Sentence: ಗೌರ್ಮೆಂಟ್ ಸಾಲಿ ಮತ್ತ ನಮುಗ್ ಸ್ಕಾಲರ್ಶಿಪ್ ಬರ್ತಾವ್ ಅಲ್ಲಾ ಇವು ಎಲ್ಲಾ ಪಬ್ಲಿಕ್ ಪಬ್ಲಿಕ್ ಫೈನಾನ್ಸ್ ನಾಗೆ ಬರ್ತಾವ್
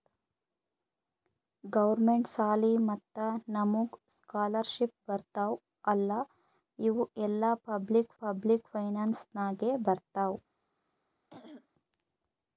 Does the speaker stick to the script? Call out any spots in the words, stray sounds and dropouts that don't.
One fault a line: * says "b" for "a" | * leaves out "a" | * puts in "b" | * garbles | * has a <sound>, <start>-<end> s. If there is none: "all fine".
* has a throat clearing, 11.3-11.7 s